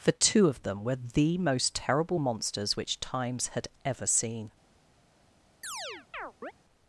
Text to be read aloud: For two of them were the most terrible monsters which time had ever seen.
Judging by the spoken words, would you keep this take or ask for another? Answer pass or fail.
fail